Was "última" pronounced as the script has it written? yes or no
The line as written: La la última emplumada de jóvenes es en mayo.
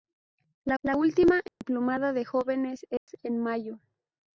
yes